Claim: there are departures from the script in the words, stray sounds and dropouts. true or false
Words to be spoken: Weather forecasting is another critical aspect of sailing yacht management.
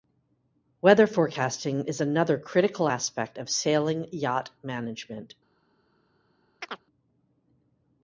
true